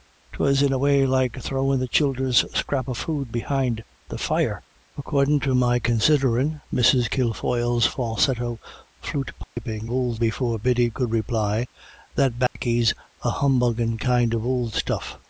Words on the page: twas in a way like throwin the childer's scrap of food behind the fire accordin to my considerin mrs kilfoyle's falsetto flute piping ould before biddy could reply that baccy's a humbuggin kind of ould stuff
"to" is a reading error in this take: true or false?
false